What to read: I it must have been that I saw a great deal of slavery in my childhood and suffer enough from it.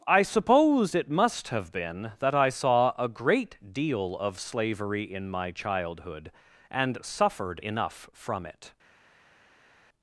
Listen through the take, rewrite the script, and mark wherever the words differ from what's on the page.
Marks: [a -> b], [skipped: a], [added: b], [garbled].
I [added: suppose] it must have been that I saw a great deal of slavery in my childhood and [suffer -> suffered] enough from it.